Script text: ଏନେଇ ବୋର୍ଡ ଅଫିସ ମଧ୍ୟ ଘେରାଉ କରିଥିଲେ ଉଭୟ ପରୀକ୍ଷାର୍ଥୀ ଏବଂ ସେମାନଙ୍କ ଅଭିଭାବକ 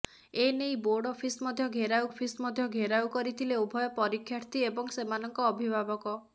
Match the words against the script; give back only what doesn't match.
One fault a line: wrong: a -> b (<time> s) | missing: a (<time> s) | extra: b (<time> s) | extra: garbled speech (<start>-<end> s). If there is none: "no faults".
extra: ଅଫିସ ମଧ୍ୟ ଘେରାଉ (2.1 s)